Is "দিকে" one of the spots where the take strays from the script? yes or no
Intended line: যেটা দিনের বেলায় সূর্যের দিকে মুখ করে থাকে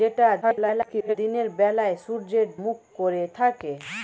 yes